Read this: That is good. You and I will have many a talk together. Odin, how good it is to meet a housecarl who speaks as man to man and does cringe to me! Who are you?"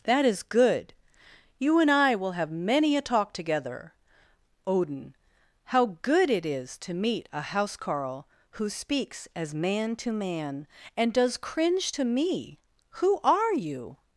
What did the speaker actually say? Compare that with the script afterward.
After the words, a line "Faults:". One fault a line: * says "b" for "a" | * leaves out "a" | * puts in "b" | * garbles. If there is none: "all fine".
That is good. You and I will have many a talk together. Odin, how good it is to meet a housecarl who speaks as man to man and does cringe to me! Who are you?"
Faults:
all fine